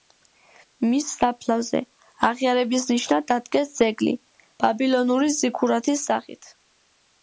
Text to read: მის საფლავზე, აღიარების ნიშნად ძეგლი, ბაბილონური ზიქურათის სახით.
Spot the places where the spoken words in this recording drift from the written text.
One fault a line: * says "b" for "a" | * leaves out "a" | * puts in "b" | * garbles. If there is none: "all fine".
* puts in "დადგეს"